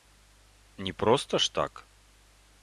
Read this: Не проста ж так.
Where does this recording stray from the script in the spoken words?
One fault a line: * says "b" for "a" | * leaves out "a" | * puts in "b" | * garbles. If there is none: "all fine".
all fine